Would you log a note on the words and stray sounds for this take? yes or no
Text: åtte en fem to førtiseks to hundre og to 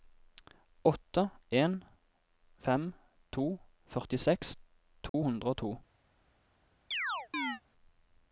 yes